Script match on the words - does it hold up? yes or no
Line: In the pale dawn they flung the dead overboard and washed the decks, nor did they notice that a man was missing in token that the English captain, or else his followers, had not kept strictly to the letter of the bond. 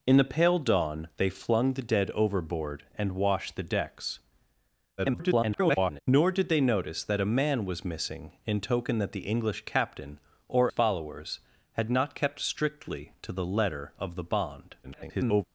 no